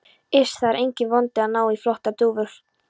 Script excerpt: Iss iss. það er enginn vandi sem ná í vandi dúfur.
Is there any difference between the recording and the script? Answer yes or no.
yes